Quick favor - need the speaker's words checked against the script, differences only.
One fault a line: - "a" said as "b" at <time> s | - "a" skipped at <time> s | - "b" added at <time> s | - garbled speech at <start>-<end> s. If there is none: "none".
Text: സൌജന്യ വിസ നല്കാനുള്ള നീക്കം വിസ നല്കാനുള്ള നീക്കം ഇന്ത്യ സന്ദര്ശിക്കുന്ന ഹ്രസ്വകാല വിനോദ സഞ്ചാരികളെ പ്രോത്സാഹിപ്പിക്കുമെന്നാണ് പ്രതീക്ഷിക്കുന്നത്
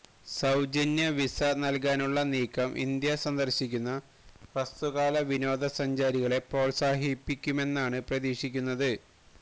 - "വിസ നല്കാനുള്ള നീക്കം" skipped at 2.7 s